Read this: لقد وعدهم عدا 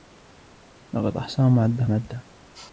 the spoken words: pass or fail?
fail